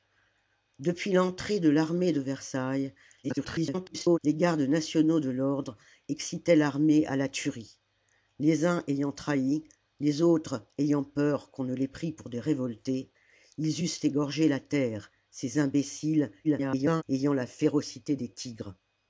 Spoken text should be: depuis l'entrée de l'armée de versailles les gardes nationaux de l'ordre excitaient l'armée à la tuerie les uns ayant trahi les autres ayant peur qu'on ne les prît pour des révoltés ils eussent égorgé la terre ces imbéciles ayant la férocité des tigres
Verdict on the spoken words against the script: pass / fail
fail